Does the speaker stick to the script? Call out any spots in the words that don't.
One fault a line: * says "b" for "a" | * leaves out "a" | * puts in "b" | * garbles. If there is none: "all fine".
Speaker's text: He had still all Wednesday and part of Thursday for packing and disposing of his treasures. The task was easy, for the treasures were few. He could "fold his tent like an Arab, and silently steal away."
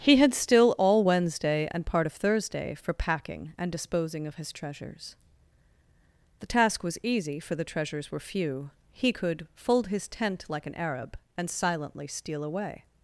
all fine